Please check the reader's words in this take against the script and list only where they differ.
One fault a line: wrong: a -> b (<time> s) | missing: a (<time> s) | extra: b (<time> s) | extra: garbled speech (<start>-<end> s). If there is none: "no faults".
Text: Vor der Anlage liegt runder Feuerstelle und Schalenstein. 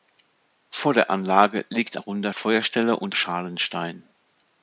no faults